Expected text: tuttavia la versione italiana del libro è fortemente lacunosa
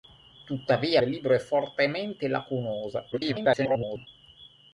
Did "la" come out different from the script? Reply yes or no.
yes